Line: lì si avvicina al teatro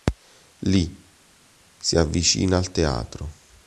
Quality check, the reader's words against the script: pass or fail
pass